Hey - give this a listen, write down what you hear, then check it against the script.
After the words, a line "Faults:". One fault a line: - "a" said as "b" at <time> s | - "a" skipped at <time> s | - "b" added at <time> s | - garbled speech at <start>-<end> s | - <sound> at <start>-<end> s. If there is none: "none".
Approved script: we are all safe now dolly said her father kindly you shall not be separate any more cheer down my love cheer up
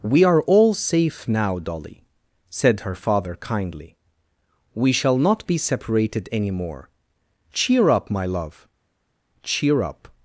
we are all safe now dolly said her father kindly we shall not be separated any more cheer up my love cheer up
Faults:
- "you" said as "we" at 4.7 s
- "separate" said as "separated" at 5.6 s
- "down" said as "up" at 7.9 s